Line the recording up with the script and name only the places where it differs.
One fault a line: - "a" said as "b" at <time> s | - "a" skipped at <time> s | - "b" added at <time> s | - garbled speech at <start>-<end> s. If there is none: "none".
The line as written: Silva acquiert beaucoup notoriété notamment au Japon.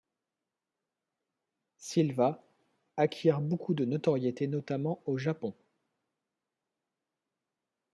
- "de" added at 3.8 s